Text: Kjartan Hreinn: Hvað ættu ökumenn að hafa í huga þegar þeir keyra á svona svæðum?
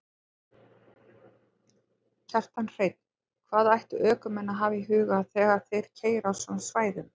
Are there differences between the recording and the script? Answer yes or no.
no